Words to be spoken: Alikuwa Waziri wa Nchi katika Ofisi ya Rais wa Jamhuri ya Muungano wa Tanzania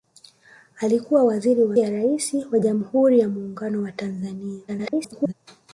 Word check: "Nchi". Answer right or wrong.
wrong